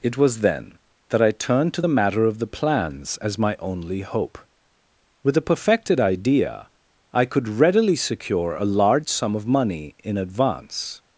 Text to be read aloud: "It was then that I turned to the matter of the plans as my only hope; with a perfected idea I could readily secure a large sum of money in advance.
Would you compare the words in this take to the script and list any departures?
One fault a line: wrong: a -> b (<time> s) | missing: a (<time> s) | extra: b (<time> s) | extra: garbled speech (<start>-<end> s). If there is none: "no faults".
no faults